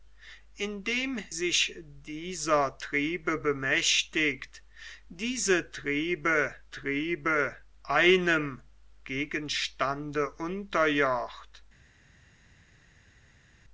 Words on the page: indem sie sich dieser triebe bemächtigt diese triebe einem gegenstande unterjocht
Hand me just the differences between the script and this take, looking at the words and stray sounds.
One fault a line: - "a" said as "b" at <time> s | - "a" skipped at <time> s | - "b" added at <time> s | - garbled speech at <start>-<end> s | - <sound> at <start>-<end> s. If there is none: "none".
- "sie" skipped at 1.2 s
- "triebe" added at 6.7 s